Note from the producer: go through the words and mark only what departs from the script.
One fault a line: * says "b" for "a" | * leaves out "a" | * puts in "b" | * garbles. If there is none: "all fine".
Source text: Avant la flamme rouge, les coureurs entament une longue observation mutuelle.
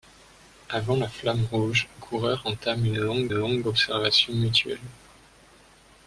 * leaves out "les"
* puts in "longue"